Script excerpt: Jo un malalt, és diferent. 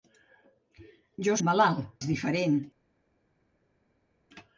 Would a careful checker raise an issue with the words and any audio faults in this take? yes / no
no